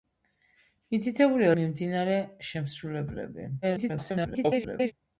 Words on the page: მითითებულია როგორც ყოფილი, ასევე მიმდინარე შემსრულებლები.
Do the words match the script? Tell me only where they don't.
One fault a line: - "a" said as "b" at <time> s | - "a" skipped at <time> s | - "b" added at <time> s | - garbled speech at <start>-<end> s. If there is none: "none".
- "როგორც ყოფილი ასევე" skipped at 1.5 s
- garbled speech at 3.6-4.9 s